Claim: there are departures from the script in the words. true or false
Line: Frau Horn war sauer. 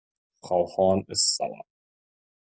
true